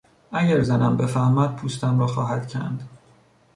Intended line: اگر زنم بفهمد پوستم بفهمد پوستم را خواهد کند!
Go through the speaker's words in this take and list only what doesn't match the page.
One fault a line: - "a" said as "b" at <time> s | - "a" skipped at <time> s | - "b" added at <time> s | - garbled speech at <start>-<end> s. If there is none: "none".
- "بفهمد پوستم" skipped at 2.0 s